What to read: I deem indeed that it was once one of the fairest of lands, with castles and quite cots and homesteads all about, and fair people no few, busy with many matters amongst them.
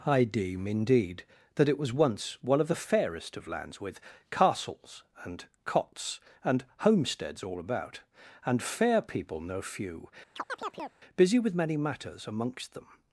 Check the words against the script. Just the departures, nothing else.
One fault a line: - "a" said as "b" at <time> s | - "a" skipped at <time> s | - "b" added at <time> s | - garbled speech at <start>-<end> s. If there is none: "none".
- "quite" skipped at 5.5 s